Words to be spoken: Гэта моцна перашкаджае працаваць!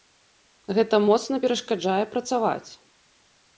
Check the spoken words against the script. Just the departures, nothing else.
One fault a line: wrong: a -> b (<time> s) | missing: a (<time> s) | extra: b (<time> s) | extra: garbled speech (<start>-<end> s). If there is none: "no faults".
no faults